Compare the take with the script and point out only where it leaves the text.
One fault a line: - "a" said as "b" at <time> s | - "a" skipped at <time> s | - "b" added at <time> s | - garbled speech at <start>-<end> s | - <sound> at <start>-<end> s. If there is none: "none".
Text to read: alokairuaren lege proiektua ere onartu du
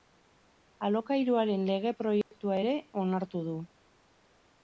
- dropout at 2.2-2.3 s